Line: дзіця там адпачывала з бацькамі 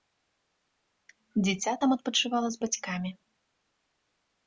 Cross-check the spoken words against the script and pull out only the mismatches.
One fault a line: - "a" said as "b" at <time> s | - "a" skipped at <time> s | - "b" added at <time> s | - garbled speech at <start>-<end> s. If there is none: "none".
none